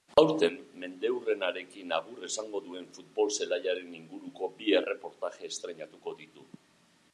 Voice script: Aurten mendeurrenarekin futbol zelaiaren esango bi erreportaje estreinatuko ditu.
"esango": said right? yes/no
no